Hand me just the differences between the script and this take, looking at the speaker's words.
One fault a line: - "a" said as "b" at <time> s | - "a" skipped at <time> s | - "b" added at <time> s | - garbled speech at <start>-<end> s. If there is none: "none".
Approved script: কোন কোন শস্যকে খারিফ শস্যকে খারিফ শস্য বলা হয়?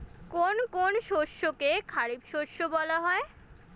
- "শস্যকে খারিফ" skipped at 2.2 s